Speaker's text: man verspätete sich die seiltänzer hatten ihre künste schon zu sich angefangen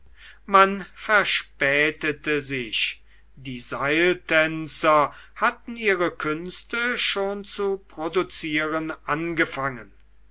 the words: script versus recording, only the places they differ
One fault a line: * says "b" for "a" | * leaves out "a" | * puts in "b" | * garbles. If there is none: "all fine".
* says "produzieren" for "sich"